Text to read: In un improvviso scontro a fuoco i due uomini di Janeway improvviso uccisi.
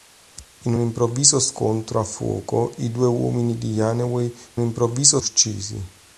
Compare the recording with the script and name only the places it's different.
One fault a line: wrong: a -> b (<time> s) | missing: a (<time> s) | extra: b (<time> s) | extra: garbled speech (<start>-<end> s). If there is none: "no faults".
no faults